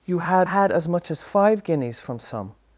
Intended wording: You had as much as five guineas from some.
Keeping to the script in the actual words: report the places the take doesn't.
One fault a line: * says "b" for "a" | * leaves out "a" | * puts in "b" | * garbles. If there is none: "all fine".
* puts in "had"